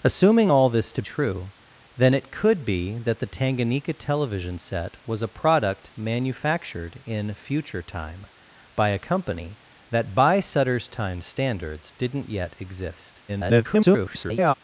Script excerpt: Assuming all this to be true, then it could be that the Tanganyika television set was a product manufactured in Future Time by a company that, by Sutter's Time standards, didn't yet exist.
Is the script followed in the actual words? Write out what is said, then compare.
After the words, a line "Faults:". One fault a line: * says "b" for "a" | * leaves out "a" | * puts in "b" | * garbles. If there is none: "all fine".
Assuming all this to true, then it could be that the Tanganyika television set was a product manufactured in Future Time by a company that, by Sutter's Time standards, didn't yet exist. [garbled]
Faults:
* leaves out "be"
* garbles